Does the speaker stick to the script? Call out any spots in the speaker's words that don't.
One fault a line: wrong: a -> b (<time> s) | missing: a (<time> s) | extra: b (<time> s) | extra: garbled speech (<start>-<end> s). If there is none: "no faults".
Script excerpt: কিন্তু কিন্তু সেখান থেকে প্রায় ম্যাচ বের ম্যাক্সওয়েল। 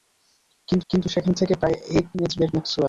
no faults